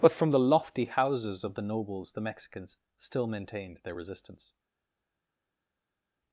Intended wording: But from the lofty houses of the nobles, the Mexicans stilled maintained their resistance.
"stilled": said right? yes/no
no